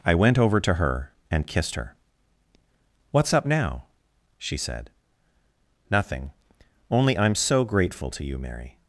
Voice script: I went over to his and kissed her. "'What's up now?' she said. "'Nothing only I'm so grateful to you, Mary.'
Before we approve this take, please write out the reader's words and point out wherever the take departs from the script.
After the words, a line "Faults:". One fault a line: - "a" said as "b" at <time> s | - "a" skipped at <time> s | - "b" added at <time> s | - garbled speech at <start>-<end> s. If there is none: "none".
I went over to her and kissed her. "'What's up now?' she said. "'Nothing only I'm so grateful to you, Mary.'
Faults:
- "his" said as "her" at 0.8 s